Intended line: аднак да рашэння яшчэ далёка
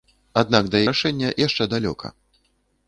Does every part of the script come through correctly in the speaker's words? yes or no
yes